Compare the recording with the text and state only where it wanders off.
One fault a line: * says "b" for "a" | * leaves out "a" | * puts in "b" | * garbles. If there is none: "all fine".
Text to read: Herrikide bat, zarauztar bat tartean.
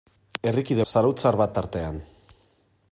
* leaves out "bat"